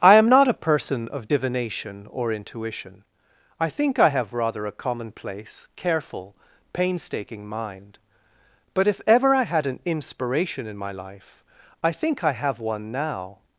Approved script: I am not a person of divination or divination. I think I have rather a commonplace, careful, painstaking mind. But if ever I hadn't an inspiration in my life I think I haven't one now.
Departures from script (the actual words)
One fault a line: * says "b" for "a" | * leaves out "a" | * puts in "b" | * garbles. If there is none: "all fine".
* says "intuition" for "divination"
* says "had" for "hadn't"
* says "have" for "haven't"